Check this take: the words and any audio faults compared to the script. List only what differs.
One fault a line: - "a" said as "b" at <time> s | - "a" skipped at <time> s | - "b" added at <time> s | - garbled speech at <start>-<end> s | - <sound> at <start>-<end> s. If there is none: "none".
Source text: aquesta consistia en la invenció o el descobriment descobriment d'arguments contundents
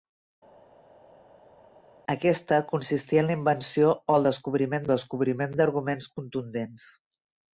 none